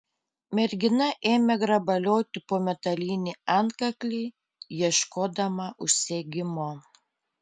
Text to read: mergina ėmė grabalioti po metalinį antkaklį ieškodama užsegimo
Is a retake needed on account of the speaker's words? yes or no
no